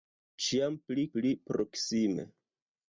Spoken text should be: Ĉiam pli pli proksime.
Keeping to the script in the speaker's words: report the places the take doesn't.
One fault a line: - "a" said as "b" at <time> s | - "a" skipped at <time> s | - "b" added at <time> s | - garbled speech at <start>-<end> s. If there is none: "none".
none